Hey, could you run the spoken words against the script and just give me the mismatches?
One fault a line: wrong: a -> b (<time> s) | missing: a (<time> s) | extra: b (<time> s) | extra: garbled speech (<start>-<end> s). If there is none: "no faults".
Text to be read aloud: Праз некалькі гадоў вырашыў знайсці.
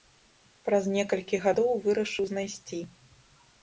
no faults